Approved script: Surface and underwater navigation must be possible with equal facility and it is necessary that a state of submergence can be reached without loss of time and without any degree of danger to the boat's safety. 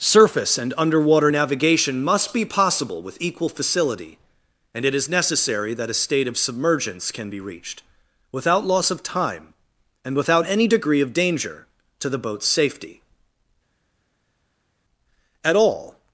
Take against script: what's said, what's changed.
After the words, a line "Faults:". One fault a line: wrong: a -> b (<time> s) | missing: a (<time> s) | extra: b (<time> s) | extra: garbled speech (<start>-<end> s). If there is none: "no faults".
Surface and underwater navigation must be possible with equal facility and it is necessary that a state of submergence can be reached without loss of time and without any degree of danger to the boat's safety. At all
Faults:
extra: At all (15.4 s)